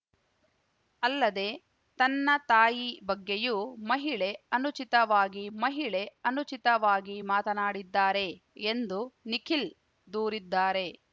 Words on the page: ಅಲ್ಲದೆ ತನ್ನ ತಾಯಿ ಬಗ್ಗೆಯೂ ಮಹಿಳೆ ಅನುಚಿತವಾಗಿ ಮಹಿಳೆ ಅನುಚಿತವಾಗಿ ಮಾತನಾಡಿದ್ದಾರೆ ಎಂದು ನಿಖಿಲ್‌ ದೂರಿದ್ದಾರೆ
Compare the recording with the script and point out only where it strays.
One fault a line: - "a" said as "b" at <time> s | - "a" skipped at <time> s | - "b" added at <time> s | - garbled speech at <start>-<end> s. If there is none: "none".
none